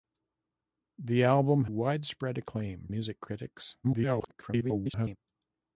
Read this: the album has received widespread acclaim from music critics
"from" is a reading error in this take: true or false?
true